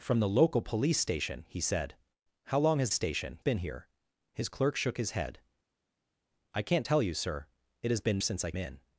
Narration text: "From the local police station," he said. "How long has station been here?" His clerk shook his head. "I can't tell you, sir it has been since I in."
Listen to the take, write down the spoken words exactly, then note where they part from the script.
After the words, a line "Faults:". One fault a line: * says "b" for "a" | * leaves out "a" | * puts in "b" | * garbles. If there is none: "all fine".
"From the local police station," he said. "How long has station been here?" His clerk shook his head. "I can't tell you, sir it has been since I in."
Faults:
all fine